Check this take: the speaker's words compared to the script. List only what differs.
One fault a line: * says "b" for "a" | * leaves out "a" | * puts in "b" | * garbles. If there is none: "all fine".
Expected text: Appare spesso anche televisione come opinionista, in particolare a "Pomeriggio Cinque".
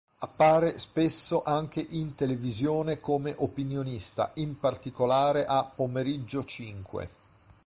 * puts in "in"